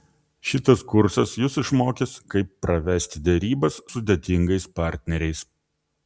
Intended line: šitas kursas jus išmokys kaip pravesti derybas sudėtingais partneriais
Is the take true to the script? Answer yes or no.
yes